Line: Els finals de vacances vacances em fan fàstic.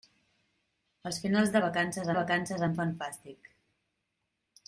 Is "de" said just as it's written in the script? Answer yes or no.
yes